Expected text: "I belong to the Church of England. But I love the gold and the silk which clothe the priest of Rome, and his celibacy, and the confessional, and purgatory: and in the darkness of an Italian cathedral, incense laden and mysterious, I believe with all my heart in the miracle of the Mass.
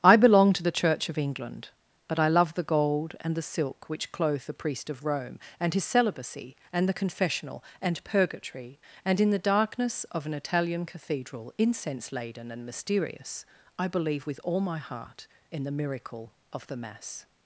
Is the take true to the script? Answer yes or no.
yes